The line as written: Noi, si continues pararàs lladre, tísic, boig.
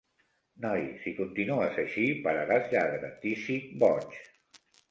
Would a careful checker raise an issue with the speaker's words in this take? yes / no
yes